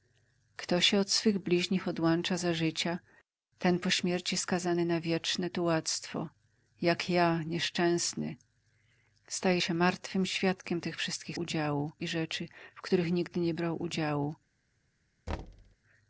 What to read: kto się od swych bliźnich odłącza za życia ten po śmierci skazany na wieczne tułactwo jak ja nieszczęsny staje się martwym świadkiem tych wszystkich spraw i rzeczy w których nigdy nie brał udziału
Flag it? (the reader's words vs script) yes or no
yes